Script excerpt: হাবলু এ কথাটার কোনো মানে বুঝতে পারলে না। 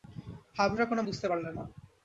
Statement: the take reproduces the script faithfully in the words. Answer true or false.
false